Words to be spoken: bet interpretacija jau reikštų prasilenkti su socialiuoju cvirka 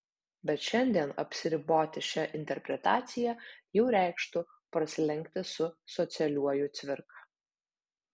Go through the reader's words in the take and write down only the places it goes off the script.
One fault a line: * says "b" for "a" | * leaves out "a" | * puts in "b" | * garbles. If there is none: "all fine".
* puts in "šiandien apsiriboti šia"